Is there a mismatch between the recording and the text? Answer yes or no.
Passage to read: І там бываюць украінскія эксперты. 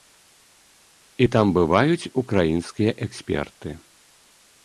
no